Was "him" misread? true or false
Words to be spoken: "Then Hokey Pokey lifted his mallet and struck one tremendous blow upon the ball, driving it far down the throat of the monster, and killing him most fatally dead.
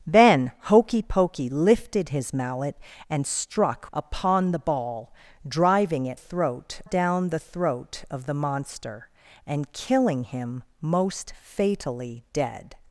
false